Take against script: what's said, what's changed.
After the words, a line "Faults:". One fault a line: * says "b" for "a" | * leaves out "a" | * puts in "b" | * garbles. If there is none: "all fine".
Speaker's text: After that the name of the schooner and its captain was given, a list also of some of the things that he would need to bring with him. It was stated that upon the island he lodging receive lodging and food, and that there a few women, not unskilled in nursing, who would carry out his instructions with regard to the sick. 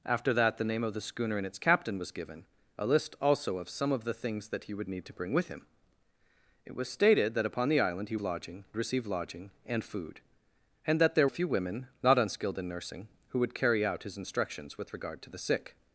After that the name of the schooner and its captain was given, a list also of some of the things that he would need to bring with him. It was stated that upon the island he lodging receive lodging and food, and that there a few women, not unskilled in nursing, who would carry out his instructions with regard to the sick.
Faults:
all fine